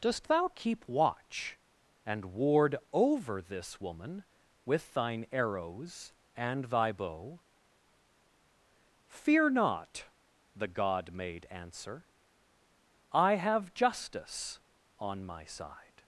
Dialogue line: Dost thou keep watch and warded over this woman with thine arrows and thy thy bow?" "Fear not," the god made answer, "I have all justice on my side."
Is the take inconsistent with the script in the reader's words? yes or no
yes